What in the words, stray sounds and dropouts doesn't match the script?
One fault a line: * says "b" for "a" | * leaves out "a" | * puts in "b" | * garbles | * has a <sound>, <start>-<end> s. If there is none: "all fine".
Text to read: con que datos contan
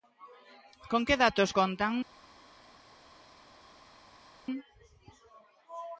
all fine